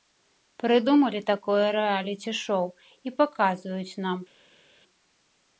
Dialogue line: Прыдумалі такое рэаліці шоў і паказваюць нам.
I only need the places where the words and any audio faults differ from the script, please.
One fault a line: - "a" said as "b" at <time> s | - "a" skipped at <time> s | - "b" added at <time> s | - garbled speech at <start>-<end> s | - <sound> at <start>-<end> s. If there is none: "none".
none